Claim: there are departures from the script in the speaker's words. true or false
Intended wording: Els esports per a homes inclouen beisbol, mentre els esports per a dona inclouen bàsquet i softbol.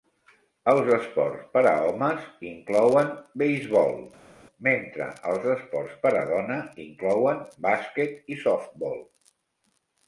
false